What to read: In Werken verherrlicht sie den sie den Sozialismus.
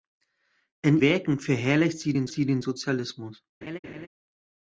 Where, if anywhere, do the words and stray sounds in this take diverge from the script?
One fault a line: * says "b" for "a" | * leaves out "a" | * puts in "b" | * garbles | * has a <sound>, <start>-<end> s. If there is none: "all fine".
* has a laugh, 3.6-4.1 s